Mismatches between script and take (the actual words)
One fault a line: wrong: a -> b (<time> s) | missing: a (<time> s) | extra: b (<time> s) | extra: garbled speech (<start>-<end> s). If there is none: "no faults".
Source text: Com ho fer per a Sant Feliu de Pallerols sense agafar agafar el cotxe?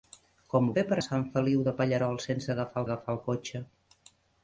no faults